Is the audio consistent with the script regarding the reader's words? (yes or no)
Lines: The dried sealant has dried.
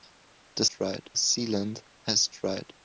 yes